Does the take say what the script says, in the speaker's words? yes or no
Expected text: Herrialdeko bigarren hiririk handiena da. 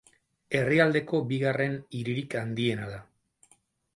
yes